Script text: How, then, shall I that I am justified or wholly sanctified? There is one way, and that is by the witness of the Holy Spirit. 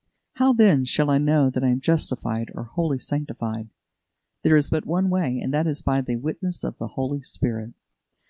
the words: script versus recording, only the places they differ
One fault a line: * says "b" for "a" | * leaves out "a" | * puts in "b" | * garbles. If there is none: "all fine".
* puts in "know"
* puts in "but"